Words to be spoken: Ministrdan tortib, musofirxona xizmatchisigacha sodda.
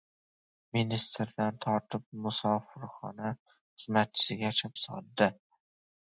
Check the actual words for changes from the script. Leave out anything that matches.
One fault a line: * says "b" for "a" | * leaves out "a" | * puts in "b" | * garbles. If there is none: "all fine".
all fine